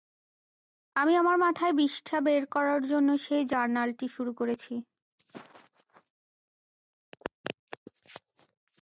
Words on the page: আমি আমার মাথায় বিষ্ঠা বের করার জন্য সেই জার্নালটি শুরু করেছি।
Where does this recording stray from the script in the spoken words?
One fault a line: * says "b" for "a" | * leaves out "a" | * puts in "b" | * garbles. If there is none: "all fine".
all fine